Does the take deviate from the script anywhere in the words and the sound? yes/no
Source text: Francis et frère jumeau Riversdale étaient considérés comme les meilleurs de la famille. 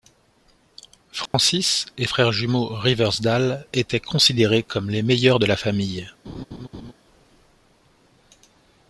yes